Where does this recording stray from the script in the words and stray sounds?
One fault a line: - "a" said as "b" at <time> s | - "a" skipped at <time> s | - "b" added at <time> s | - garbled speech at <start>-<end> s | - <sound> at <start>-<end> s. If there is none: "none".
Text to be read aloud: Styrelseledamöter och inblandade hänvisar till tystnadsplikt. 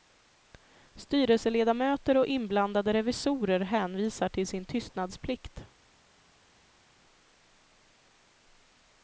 - "revisorer" added at 2.9 s
- "sin" added at 4.5 s